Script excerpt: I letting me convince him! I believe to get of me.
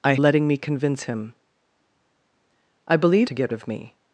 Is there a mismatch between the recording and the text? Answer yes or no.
no